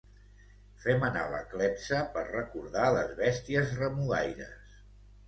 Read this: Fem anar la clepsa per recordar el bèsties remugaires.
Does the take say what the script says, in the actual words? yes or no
no